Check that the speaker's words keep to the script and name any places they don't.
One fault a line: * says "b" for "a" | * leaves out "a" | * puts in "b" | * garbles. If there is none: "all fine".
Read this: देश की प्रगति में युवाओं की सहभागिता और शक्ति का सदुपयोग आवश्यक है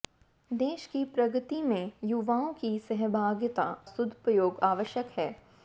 * leaves out "और शक्ति का"